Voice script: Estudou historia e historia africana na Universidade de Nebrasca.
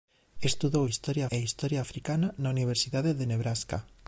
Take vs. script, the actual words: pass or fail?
pass